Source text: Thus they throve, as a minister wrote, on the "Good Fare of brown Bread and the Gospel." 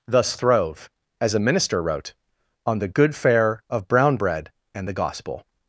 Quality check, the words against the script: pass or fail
fail